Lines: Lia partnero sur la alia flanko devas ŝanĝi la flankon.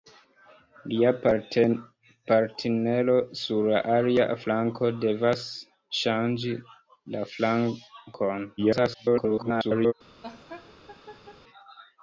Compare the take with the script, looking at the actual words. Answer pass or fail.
fail